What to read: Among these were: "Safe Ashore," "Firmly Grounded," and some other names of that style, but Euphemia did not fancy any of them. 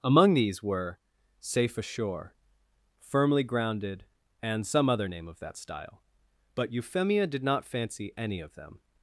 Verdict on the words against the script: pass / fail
fail